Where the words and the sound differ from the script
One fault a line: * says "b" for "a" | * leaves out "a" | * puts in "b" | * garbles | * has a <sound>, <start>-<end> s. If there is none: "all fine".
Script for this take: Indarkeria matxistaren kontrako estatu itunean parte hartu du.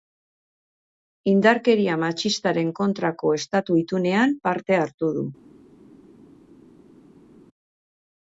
all fine